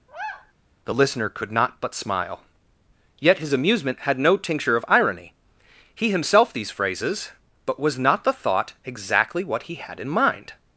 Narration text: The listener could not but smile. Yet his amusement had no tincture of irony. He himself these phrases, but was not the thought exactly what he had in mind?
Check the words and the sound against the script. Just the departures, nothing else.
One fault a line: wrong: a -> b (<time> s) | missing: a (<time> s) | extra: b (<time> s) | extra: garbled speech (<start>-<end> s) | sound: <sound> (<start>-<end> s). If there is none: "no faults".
sound: sigh (0.1-0.5 s)